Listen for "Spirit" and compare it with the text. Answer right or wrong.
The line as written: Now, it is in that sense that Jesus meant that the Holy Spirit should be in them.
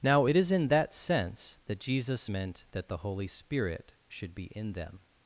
right